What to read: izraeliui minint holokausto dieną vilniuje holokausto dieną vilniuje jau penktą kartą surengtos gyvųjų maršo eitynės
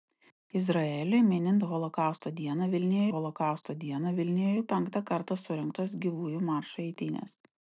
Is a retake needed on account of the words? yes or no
no